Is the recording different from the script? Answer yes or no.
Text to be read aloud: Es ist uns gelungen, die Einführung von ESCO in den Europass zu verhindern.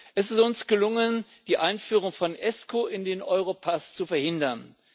no